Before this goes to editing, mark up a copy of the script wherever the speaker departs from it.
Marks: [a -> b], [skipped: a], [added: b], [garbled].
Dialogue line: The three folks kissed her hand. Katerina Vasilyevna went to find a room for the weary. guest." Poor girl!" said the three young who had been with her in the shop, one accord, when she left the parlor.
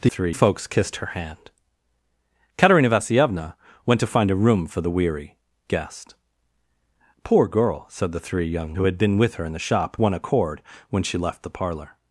The three folks kissed her hand. Katerina Vasilyevna went to find a room for the weary. guest." Poor girl!" said the three young who had been with her in the shop, one accord, when she left the parlor.